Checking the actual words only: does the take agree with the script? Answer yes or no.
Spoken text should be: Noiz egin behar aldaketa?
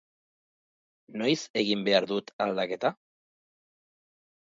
no